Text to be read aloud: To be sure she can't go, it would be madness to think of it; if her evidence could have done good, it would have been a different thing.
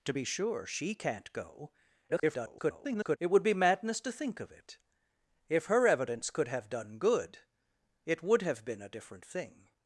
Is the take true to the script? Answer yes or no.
no